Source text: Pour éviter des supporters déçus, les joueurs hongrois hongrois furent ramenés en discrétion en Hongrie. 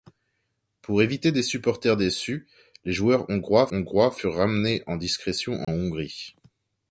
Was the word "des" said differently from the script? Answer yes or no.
no